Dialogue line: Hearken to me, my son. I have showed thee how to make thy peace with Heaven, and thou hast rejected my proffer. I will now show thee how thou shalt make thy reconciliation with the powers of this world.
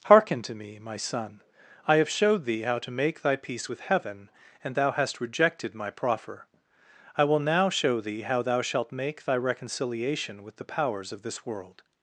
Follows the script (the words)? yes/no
yes